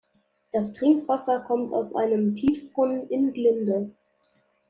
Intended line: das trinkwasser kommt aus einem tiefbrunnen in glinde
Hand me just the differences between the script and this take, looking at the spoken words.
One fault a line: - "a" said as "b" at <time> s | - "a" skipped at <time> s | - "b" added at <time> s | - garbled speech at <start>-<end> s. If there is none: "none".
none